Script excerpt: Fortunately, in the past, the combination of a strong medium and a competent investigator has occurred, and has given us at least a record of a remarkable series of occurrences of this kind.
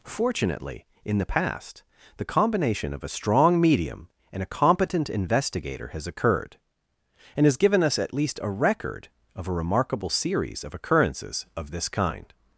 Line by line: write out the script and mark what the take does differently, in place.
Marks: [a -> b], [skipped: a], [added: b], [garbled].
Fortunately, in the past, the combination of a strong medium and a competent investigator has occurred, and has given us at least a record of a remarkable series of occurrences of this kind.